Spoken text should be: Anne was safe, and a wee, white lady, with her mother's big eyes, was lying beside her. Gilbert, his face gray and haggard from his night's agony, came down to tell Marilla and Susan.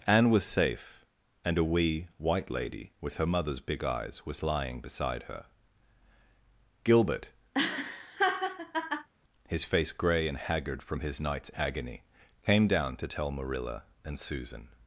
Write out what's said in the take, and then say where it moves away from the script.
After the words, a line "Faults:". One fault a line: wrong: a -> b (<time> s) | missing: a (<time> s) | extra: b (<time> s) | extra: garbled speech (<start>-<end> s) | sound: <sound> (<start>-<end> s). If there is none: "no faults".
Anne was safe, and a wee, white lady, with her mother's big eyes, was lying beside her. Gilbert, his face gray and haggard from his night's agony, came down to tell Marilla and Susan.
Faults:
sound: laugh (7.5-9.1 s)